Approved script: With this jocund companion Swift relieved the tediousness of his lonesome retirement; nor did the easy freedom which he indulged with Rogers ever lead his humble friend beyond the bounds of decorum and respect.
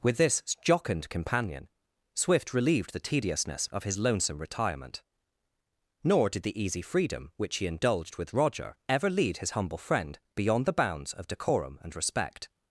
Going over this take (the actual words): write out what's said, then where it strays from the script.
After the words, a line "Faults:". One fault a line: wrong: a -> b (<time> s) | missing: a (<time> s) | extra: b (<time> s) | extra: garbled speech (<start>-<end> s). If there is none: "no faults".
With this jocund companion Swift relieved the tediousness of his lonesome retirement; nor did the easy freedom which he indulged with Roger ever lead his humble friend beyond the bounds of decorum and respect.
Faults:
wrong: Rogers -> Roger (8.3 s)